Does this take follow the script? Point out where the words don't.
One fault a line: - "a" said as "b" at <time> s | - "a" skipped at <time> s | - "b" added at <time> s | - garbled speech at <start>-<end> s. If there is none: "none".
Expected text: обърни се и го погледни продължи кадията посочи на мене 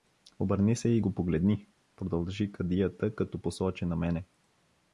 - "като" added at 3.1 s